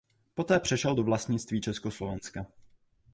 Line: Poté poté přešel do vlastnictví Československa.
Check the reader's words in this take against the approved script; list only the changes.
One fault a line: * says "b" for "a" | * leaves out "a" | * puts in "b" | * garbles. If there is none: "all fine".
* leaves out "poté"